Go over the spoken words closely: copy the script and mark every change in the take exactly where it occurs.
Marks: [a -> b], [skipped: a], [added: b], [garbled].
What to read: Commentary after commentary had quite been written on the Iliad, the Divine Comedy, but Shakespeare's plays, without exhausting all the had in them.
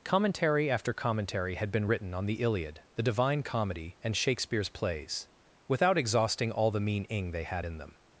Commentary after commentary had [skipped: quite] been written on the Iliad, the Divine Comedy, [but -> and] Shakespeare's plays, without exhausting all the [added: mean ing they] had in them.